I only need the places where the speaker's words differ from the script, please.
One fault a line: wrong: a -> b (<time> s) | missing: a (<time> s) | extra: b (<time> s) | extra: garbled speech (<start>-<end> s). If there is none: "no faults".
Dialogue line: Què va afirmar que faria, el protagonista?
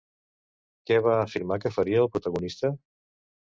no faults